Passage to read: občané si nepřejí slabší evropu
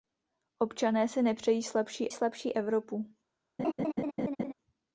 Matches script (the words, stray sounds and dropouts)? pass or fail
fail